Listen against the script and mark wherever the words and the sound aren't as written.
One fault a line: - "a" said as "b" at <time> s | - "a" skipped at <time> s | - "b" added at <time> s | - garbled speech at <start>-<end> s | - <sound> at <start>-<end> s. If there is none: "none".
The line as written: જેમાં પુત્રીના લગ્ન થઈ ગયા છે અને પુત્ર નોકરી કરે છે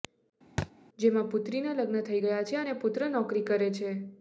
- thud at 0.6-0.7 s